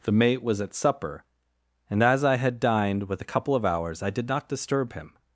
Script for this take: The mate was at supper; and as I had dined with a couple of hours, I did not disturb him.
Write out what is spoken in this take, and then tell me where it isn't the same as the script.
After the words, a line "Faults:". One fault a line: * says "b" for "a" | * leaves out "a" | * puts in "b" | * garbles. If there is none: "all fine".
The mate was at supper; and as I had dined with a couple of hours, I did not disturb him.
Faults:
all fine